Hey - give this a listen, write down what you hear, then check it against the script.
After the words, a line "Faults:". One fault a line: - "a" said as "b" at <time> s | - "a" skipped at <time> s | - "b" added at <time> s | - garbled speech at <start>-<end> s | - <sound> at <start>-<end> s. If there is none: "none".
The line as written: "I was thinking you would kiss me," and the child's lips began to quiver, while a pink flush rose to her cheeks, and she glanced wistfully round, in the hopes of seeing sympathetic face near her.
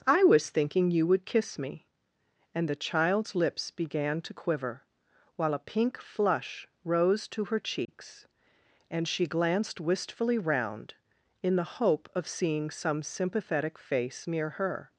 "I was thinking you would kiss me," and the child's lips began to quiver, while a pink flush rose to her cheeks, and she glanced wistfully round, in the hope of seeing some sympathetic face near her.
Faults:
- dropout at 7.8-7.9 s
- "hopes" said as "hope" at 11.8 s
- "some" added at 12.7 s